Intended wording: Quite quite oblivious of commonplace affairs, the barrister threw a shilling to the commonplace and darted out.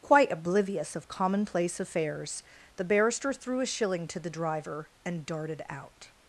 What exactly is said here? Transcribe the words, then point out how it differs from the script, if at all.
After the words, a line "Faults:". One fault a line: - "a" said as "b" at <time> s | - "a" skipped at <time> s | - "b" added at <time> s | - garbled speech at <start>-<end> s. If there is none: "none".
Quite oblivious of commonplace affairs, the barrister threw a shilling to the driver and darted out.
Faults:
- "quite" skipped at 0.3 s
- "commonplace" said as "driver" at 4.3 s